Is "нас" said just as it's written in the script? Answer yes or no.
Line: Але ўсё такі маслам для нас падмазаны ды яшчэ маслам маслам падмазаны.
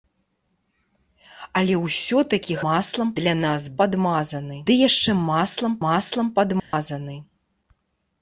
yes